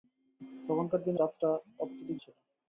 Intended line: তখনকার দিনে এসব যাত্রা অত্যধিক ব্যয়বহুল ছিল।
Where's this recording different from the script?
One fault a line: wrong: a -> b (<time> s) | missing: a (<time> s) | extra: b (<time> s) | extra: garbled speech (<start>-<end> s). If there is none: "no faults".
missing: এসব (1.2 s)
missing: ব্যয়বহুল (2.2 s)